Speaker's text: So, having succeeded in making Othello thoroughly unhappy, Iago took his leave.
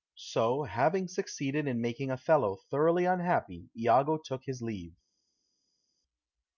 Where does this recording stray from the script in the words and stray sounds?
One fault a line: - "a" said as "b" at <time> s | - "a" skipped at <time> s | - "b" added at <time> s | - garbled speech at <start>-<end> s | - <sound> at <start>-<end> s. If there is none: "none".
none